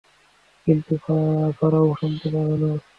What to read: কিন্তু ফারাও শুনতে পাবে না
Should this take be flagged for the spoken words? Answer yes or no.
no